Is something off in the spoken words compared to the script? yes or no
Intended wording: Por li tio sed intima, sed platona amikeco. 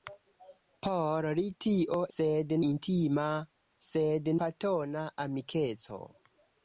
no